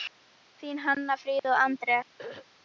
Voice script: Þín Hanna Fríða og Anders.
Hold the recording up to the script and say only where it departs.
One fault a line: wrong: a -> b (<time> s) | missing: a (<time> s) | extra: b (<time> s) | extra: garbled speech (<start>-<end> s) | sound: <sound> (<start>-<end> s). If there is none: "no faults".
sound: dropout (1.4-1.4 s)
sound: throat clearing (2.2-2.5 s)